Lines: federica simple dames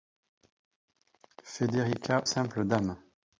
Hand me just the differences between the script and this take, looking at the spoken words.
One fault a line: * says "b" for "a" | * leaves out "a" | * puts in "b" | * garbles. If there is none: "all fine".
all fine